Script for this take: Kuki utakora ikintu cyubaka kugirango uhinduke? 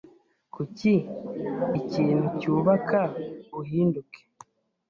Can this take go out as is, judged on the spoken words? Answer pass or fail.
fail